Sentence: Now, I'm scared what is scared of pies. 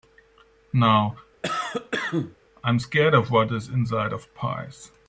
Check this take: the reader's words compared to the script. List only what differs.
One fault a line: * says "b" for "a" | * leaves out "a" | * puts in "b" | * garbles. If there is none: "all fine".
* puts in "of"
* says "inside" for "scared"